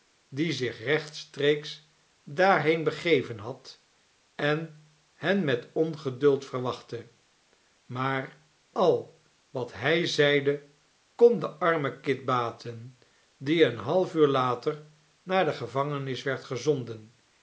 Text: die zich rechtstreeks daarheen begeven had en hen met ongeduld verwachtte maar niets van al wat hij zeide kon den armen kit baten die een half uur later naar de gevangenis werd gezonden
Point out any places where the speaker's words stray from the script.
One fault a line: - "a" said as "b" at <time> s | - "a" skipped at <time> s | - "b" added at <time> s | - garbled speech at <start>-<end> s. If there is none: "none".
- "niets van" skipped at 8.4 s